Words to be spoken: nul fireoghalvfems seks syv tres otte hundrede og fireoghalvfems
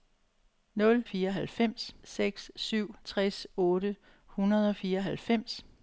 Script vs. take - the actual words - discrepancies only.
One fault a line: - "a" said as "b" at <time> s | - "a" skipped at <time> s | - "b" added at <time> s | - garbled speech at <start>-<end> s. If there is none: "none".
none